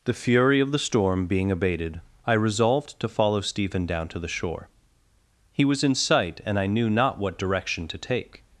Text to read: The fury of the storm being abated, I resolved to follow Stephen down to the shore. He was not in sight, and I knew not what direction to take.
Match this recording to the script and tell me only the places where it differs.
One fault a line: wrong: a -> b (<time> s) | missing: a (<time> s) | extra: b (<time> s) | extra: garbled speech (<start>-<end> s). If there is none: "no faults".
missing: not (5.8 s)